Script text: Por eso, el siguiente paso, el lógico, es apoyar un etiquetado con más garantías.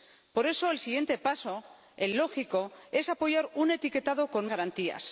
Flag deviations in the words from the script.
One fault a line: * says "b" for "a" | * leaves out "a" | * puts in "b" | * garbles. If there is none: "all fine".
* leaves out "más"